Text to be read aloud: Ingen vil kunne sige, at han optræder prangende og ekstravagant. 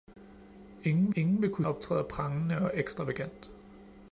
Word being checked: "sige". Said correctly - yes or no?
no